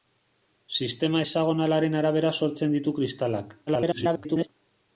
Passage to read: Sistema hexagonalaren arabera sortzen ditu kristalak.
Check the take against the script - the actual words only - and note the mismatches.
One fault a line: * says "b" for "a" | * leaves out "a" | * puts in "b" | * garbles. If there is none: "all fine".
* garbles